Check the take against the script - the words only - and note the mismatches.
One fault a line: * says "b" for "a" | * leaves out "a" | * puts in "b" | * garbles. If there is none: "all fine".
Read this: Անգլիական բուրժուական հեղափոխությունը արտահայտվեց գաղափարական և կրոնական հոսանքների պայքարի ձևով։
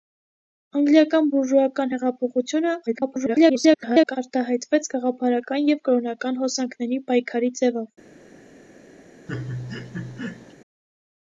* garbles